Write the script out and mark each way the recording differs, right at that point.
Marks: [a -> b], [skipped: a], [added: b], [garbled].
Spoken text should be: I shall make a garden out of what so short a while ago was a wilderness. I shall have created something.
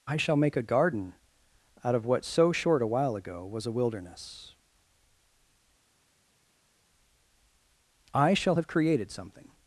I shall make a garden out of what so short a while ago was a wilderness. I shall have created something.